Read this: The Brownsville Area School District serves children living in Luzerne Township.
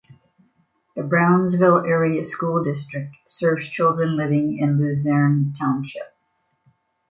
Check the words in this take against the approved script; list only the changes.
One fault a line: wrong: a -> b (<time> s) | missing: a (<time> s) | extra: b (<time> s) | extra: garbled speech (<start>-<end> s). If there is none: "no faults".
no faults